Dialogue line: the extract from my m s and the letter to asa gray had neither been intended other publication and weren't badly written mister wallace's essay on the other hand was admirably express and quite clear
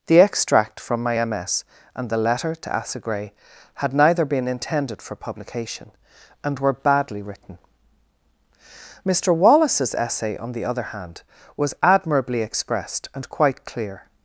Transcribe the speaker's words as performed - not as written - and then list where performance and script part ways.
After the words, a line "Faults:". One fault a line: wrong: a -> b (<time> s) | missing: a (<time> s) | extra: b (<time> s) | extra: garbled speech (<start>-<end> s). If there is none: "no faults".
the extract from my m s and the letter to asa gray had neither been intended for publication and were badly written mister wallace's essay on the other hand was admirably expressed and quite clear
Faults:
wrong: other -> for (5.0 s)
wrong: weren't -> were (6.6 s)
wrong: express -> expressed (12.4 s)